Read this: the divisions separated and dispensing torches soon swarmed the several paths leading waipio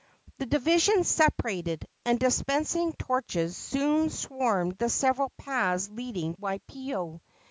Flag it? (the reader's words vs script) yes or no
no